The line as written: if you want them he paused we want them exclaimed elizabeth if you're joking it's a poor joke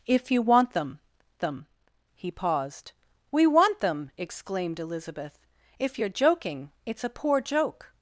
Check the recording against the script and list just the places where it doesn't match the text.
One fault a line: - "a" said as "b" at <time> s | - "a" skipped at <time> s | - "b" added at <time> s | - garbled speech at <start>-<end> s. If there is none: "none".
- "them" added at 1.4 s